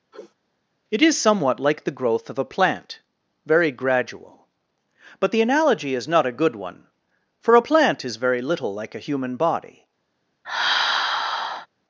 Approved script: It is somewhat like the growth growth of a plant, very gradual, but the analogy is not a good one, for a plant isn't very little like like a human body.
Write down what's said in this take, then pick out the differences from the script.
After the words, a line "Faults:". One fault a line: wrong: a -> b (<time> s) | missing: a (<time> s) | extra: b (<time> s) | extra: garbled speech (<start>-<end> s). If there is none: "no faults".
It is somewhat like the growth of a plant, very gradual, but the analogy is not a good one, for a plant is very little like a human body.
Faults:
missing: growth (2.3 s)
wrong: isn't -> is (8.0 s)
missing: like (8.9 s)